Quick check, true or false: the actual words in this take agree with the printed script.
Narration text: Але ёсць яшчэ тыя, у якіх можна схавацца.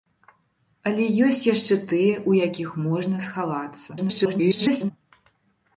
false